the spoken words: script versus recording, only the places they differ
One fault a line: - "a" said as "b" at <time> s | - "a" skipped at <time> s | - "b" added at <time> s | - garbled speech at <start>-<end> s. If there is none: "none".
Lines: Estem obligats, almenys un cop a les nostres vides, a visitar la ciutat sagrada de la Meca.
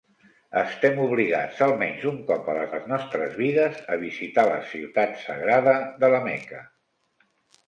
- "les" added at 2.7 s